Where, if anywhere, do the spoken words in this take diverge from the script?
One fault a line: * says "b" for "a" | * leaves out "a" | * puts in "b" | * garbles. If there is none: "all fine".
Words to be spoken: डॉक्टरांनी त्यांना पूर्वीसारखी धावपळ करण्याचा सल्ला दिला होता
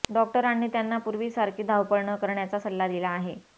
* puts in "न"
* says "आहे" for "होता"